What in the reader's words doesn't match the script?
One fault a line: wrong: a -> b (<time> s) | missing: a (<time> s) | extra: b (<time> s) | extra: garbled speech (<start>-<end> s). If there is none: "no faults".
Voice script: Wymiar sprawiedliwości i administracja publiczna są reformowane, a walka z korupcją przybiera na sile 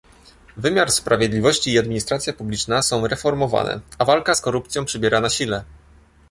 no faults